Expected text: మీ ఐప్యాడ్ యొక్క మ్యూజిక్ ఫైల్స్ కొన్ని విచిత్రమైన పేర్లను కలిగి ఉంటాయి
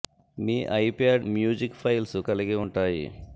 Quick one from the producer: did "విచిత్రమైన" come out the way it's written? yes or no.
no